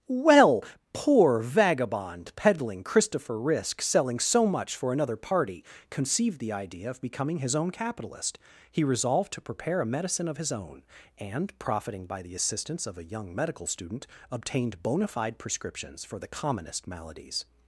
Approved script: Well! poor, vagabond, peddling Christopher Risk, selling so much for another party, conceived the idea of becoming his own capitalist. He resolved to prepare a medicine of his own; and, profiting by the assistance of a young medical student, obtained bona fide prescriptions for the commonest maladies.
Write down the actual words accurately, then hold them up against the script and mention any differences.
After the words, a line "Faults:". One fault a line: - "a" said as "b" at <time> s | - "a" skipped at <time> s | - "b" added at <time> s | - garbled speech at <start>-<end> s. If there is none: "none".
Well! poor, vagabond, peddling Christopher Risk, selling so much for another party, conceived the idea of becoming his own capitalist. He resolved to prepare a medicine of his own; and, profiting by the assistance of a young medical student, obtained bona fide prescriptions for the commonest maladies.
Faults:
none